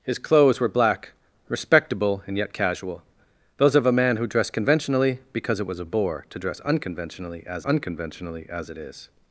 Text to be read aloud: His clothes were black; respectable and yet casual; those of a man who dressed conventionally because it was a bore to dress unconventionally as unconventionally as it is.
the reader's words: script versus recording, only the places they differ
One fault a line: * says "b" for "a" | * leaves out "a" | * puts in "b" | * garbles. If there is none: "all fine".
all fine